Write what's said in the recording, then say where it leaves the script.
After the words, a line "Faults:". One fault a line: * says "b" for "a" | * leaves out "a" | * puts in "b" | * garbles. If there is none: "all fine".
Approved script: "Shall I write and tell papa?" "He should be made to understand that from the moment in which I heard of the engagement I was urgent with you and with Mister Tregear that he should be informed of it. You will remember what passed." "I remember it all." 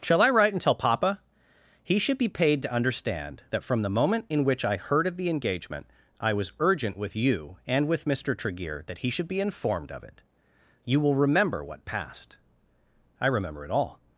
"Shall I write and tell papa?" "He should be paid to understand that from the moment in which I heard of the engagement I was urgent with you and with Mister Tregear that he should be informed of it. You will remember what passed." "I remember it all."
Faults:
* says "paid" for "made"